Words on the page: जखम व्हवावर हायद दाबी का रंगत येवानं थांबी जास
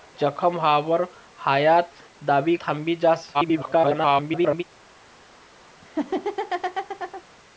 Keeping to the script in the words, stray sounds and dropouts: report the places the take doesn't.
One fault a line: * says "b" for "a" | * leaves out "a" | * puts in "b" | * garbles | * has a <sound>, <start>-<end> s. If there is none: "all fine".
* leaves out "का रंगत येवानं"
* garbles
* has a laugh, 5.8-7.2 s